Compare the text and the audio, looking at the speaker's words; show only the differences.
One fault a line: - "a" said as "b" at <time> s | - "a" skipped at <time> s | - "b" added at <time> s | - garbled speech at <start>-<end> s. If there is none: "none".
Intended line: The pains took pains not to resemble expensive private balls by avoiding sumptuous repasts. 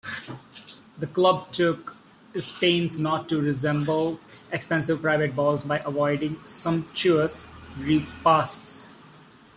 - "pains" said as "club" at 1.1 s